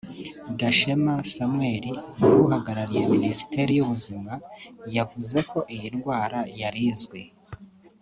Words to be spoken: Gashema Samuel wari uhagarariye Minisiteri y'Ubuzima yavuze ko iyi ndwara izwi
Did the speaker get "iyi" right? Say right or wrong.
right